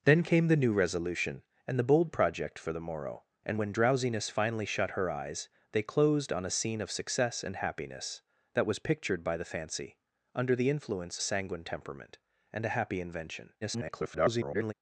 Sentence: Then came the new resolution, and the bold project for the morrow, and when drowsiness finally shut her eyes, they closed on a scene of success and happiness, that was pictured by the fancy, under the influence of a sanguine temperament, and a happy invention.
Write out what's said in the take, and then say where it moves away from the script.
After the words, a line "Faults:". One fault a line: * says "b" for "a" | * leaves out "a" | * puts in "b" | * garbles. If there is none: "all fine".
Then came the new resolution, and the bold project for the morrow, and when drowsiness finally shut her eyes, they closed on a scene of success and happiness, that was pictured by the fancy, under the influence a sanguine temperament, and a happy invention. [garbled]
Faults:
* leaves out "of"
* garbles